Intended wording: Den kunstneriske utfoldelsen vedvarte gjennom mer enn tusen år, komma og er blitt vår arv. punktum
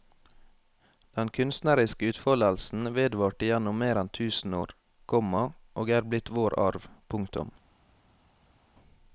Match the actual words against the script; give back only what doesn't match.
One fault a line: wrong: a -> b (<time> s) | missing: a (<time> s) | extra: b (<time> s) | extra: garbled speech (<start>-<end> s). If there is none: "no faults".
no faults